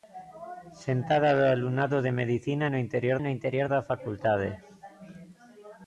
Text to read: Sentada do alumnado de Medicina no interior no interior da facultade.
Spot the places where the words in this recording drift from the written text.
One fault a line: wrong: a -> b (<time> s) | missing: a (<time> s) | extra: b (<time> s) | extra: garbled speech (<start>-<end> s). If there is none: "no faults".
no faults